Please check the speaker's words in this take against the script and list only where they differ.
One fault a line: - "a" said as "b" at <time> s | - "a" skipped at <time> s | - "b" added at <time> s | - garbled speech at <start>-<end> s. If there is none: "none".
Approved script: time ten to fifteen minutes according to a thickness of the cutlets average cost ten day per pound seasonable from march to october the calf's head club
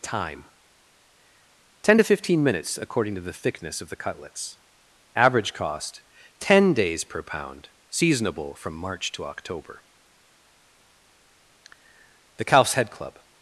- "a" said as "the" at 3.2 s
- "day" said as "days" at 6.7 s